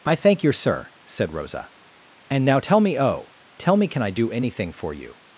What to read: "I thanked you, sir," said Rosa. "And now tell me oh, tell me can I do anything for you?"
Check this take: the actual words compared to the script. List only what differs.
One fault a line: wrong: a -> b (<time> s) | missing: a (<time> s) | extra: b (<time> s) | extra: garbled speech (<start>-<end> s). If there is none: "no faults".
wrong: thanked -> thank (0.1 s)